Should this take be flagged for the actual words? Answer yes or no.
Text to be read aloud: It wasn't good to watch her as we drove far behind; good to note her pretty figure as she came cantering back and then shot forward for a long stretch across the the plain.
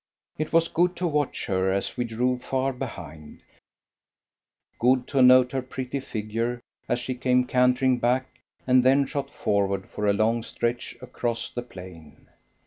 yes